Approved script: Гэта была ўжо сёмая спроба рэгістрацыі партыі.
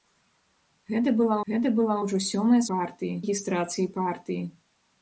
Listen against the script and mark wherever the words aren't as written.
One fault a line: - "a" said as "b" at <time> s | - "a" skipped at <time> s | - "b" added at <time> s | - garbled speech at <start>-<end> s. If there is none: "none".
- "гэта была" added at 1.5 s
- "спроба" said as "партыі" at 2.7 s